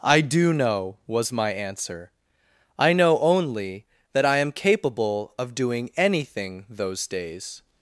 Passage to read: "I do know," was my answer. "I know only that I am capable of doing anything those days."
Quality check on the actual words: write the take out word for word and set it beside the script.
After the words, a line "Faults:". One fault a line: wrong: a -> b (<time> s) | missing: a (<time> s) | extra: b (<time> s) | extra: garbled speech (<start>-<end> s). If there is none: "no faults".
"I do know," was my answer. "I know only that I am capable of doing anything those days."
Faults:
no faults